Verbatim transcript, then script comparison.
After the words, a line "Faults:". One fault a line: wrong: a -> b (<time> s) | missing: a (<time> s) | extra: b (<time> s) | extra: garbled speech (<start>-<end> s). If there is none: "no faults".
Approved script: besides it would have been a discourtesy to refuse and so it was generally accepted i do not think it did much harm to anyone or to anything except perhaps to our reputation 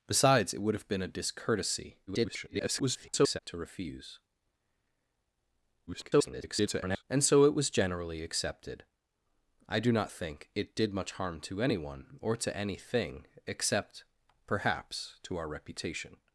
besides it would have been a discourtesy [garbled] to refuse [garbled] and so it was generally accepted i do not think it did much harm to anyone or to anything except perhaps to our reputation
Faults:
extra: garbled speech (2.1-3.4 s)
extra: garbled speech (5.9-7.0 s)